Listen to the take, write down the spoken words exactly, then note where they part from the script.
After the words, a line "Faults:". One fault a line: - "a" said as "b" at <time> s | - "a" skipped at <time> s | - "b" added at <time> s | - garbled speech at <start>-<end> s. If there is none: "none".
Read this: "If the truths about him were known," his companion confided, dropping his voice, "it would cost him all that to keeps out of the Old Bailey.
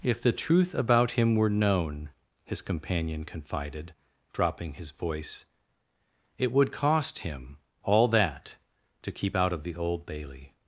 "If the truth about him were known," his companion confided, dropping his voice, "it would cost him all that to keep out of the Old Bailey.
Faults:
- "truths" said as "truth" at 0.3 s
- "keeps" said as "keep" at 9.1 s